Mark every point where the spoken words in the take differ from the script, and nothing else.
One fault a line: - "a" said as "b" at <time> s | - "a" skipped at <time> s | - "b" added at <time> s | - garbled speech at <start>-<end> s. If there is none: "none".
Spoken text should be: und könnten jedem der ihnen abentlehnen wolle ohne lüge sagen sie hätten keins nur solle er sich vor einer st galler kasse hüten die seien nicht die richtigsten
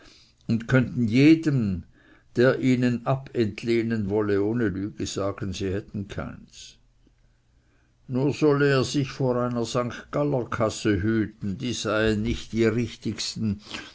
none